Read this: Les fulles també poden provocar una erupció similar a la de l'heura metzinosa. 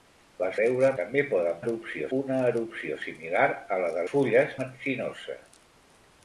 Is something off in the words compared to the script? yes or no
yes